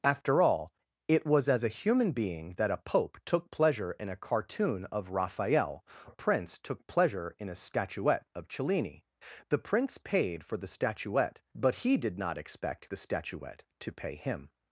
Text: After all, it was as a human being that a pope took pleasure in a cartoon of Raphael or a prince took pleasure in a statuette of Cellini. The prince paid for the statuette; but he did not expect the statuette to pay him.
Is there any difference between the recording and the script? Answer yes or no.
yes